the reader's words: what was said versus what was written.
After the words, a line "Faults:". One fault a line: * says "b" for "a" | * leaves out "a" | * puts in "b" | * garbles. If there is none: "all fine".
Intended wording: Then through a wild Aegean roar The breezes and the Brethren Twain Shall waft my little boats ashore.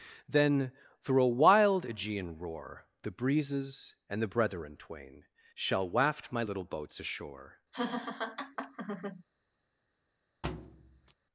Then through a wild Aegean roar The breezes and the Brethren Twain Shall waft my little boats ashore.
Faults:
all fine